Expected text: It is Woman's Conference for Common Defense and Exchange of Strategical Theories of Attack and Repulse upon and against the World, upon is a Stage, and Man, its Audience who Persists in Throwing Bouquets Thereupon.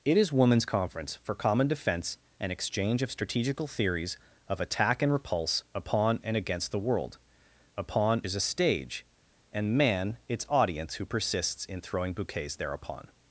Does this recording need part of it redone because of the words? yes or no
no